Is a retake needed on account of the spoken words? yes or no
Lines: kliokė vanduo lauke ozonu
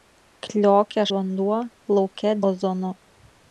no